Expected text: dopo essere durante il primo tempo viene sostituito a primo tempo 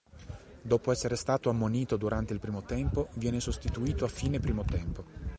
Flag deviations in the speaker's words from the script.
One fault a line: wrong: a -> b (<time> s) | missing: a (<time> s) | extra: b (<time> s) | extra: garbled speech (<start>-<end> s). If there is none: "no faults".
extra: stato ammonito (1.1 s)
extra: fine (4.1 s)